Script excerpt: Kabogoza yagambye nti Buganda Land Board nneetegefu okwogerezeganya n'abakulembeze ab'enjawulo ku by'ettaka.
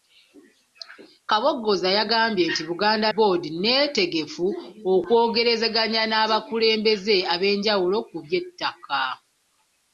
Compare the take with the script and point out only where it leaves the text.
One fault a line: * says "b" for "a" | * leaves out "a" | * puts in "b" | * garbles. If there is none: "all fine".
* leaves out "Land"